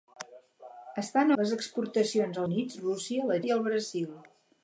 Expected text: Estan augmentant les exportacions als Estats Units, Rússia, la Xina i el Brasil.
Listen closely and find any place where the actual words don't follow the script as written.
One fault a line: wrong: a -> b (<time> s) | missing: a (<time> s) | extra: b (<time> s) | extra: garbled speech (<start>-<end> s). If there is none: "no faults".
missing: augmentant (1.3 s)
missing: als Estats (2.4 s)
missing: Xina (3.4 s)